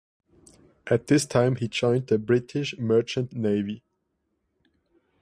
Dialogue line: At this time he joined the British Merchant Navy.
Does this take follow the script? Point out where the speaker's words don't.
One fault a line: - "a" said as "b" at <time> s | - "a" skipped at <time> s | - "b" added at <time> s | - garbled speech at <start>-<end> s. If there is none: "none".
none